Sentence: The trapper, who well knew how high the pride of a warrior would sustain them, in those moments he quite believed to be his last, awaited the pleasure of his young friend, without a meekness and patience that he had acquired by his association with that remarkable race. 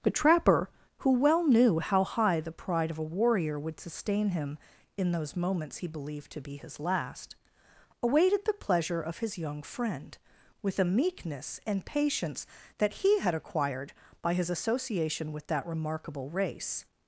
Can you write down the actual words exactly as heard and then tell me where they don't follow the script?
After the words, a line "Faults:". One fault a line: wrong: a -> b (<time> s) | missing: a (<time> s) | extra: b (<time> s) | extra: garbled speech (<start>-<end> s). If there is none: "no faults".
The trapper, who well knew how high the pride of a warrior would sustain him, in those moments he believed to be his last, awaited the pleasure of his young friend, with a meekness and patience that he had acquired by his association with that remarkable race.
Faults:
wrong: them -> him (4.3 s)
missing: quite (5.9 s)
wrong: without -> with (10.6 s)